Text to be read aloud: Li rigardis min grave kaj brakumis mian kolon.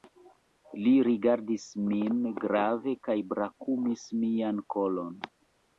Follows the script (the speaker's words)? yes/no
yes